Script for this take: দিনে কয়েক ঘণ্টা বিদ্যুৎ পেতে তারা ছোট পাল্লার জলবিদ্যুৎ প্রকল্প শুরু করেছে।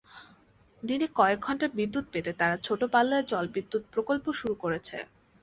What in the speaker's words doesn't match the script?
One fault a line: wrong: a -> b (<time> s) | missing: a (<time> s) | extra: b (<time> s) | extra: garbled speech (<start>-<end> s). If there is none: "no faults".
no faults